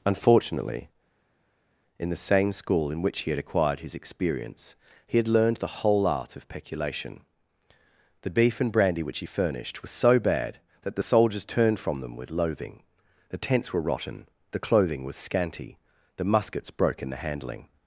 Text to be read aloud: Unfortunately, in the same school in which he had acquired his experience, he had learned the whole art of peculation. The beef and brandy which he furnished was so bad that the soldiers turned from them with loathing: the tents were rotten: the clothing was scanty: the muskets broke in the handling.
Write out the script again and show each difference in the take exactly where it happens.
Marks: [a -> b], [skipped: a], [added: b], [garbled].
Unfortunately, in the same school in which he had acquired his experience, he had learned the whole art of peculation. The beef and brandy which he furnished was so bad that the soldiers turned from them with loathing: the tents were rotten: the clothing was scanty: the muskets broke in the handling.